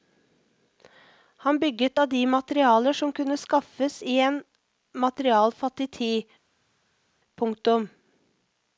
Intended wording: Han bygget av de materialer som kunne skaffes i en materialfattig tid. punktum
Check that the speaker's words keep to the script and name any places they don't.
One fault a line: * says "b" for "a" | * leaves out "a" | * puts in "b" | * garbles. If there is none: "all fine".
all fine